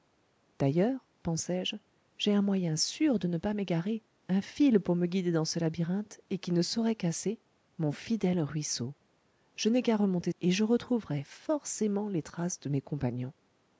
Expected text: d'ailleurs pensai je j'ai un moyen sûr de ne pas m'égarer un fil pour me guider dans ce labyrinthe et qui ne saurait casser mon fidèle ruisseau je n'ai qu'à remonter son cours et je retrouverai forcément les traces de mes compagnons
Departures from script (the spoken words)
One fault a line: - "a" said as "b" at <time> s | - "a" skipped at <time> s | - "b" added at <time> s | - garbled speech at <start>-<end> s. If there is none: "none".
- "son cours" skipped at 10.3 s